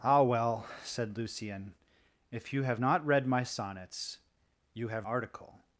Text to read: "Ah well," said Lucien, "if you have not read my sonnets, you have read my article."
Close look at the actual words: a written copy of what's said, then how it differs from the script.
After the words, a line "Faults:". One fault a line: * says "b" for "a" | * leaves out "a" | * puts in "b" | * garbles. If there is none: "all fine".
"Ah well," said Lucien, "if you have not read my sonnets, you have article."
Faults:
* leaves out "read my"